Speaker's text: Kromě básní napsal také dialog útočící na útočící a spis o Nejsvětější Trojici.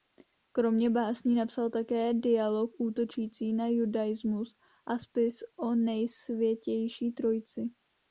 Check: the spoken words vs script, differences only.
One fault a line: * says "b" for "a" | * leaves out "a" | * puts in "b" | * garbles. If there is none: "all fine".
* says "judaismus" for "útočící"